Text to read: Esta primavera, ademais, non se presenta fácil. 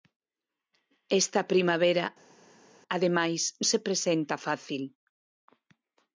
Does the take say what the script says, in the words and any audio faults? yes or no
no